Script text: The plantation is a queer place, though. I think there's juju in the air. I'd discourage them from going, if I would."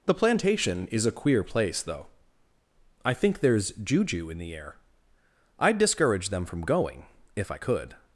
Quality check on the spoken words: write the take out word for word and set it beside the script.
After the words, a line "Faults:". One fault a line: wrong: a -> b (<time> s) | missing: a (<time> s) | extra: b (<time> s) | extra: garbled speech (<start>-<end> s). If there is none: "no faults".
The plantation is a queer place, though. I think there's juju in the air. I'd discourage them from going, if I could."
Faults:
wrong: would -> could (7.6 s)